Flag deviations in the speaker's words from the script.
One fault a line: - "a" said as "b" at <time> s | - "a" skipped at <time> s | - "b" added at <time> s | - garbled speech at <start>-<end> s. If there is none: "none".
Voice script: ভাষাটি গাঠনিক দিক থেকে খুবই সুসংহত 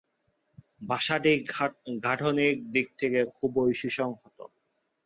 none